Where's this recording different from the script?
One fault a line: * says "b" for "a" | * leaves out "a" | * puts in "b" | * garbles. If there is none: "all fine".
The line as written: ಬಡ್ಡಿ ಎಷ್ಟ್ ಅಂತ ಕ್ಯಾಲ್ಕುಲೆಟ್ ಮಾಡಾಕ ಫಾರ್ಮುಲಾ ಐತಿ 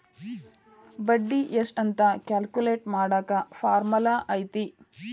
all fine